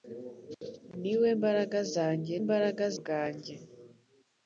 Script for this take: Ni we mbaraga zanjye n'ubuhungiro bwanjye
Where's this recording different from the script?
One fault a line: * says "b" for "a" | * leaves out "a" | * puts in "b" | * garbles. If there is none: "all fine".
* says "mbaraga" for "n'ubuhungiro"